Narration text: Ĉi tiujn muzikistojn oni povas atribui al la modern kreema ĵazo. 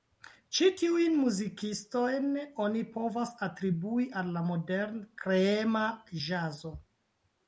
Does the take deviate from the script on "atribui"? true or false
false